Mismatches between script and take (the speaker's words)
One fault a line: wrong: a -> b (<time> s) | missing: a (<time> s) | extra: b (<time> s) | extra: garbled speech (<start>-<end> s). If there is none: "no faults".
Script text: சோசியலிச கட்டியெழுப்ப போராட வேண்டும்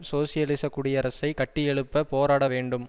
extra: குடியரசை (0.7 s)